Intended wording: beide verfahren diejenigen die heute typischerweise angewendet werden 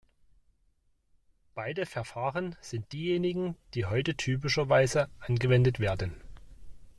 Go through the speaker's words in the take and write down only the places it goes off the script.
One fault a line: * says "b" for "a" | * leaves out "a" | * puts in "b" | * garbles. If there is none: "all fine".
* puts in "sind"